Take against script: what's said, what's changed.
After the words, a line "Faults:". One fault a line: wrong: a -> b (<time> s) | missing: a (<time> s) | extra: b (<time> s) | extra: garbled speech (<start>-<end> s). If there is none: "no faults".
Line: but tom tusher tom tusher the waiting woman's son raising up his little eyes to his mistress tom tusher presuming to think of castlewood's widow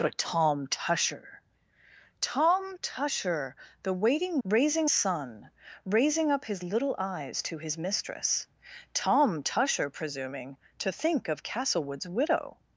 but tom tusher tom tusher the waiting raising son raising up his little eyes to his mistress tom tusher presuming to think of castlewood's widow
Faults:
wrong: woman's -> raising (4.4 s)